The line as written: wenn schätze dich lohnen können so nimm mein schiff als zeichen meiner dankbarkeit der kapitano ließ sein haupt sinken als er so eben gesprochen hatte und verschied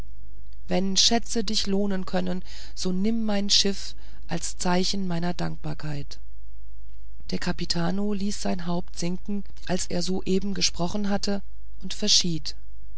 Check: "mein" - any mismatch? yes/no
no